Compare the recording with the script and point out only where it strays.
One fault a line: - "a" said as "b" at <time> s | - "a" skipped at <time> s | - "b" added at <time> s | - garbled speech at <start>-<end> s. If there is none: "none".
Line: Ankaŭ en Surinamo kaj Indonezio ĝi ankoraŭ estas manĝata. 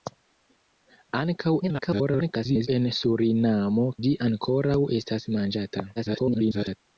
- garbled speech at 1.6-2.7 s
- "kaj Indonezio" skipped at 3.9 s
- garbled speech at 6.0-6.8 s